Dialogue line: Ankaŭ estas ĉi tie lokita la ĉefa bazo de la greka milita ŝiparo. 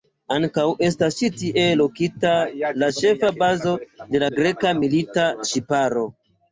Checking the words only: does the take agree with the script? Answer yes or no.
yes